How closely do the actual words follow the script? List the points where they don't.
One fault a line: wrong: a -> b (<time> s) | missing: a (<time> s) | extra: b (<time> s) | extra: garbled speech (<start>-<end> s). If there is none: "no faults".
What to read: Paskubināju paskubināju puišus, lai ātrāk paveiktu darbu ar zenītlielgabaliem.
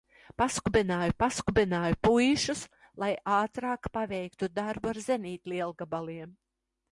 no faults